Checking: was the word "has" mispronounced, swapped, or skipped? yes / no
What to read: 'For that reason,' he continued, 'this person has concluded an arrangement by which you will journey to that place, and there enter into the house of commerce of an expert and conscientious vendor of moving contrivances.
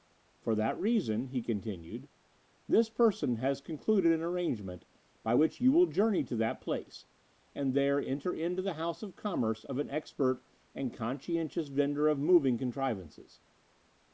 no